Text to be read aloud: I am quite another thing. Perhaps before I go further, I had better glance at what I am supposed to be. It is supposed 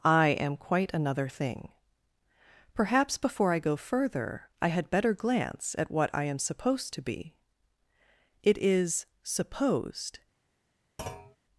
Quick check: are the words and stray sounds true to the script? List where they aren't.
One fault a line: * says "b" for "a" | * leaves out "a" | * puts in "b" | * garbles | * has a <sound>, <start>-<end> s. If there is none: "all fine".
* has a thud, 11.0-11.4 s